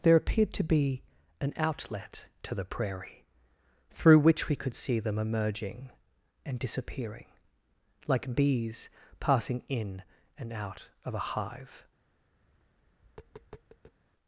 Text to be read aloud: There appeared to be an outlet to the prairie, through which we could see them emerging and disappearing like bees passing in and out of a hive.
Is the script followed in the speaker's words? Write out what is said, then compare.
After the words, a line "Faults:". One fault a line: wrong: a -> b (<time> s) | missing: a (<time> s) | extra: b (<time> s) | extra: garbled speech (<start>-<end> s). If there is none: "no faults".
There appeared to be an outlet to the prairie, through which we could see them emerging and disappearing like bees passing in and out of a hive.
Faults:
no faults